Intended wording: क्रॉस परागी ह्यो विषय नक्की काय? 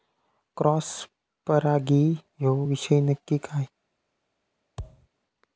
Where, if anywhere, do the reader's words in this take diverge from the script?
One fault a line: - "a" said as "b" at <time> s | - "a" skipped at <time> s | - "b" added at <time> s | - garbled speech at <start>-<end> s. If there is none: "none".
none